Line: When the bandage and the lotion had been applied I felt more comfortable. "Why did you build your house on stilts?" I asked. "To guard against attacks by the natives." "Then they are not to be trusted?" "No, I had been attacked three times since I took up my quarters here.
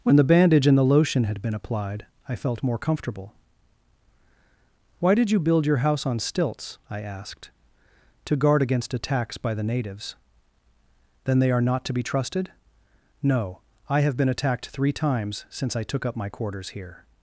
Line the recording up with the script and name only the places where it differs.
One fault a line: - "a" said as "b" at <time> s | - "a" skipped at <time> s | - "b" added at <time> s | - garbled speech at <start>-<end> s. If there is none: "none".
- "had" said as "have" at 14.0 s